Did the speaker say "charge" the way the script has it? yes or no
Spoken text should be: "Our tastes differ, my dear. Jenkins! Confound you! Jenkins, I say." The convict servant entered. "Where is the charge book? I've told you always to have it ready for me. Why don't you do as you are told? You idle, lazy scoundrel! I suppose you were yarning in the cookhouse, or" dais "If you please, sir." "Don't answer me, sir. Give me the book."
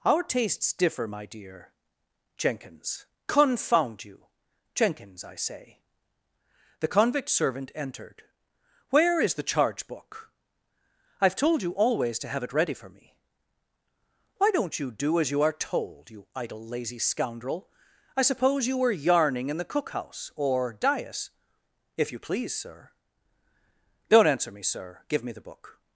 yes